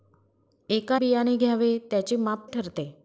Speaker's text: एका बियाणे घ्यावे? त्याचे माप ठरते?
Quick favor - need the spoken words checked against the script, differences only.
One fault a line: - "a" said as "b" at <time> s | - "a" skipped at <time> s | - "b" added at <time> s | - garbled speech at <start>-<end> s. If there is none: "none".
none